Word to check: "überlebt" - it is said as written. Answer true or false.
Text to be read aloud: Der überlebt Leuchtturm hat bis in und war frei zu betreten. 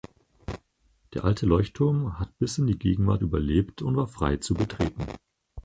false